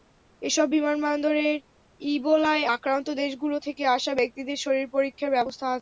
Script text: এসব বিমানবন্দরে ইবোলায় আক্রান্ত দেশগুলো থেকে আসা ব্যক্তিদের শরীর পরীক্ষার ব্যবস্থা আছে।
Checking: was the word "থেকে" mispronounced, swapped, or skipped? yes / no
no